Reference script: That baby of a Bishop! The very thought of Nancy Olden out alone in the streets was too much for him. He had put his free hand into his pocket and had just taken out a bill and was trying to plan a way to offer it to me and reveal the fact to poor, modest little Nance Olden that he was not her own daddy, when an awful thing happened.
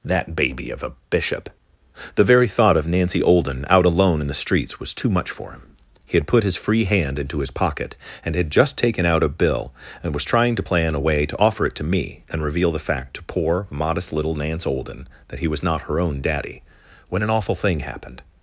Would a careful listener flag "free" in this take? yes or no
no